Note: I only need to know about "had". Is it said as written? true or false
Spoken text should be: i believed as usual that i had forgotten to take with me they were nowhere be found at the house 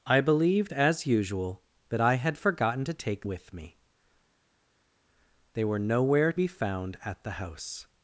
true